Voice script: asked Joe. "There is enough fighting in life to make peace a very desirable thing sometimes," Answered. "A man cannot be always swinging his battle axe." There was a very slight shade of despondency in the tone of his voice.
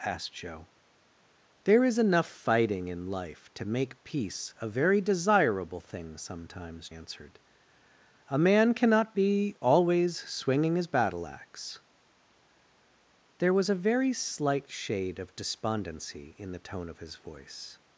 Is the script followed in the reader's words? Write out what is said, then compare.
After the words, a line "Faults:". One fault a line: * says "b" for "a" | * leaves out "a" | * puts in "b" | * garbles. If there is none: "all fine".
asked Joe. "There is enough fighting in life to make peace a very desirable thing sometimes," Answered. "A man cannot be always swinging his battle axe." There was a very slight shade of despondency in the tone of his voice.
Faults:
all fine